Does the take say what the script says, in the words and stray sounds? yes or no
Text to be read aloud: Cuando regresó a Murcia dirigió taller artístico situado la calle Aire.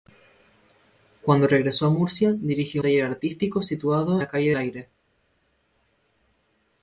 yes